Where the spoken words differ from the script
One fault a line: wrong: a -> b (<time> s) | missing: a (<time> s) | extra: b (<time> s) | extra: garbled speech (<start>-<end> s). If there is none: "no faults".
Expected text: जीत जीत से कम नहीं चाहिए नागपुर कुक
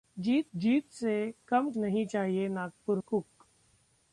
no faults